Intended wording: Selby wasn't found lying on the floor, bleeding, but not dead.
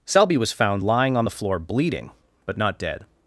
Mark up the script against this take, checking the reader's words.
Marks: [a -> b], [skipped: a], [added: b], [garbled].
Selby [wasn't -> was] found lying on the floor, bleeding, but not dead.